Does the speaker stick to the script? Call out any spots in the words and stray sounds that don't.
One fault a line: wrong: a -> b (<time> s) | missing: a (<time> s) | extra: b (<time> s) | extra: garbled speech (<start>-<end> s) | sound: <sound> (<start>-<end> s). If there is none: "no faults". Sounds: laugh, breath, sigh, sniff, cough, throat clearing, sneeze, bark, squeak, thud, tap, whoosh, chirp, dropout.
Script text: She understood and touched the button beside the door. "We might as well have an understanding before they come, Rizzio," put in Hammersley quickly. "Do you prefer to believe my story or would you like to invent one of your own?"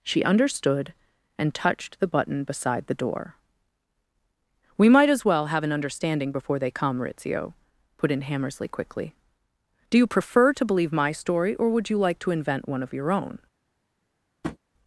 sound: tap (14.4-14.6 s)